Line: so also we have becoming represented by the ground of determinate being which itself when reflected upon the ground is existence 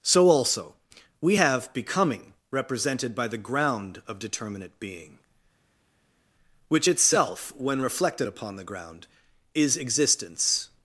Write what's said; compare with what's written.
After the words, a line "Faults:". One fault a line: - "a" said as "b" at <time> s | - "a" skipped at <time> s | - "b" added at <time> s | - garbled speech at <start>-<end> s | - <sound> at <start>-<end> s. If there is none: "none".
so also we have becoming represented by the ground of determinate being which itself when reflected upon the ground is existence
Faults:
none